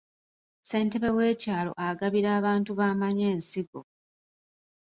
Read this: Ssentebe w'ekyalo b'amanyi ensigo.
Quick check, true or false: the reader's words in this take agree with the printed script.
false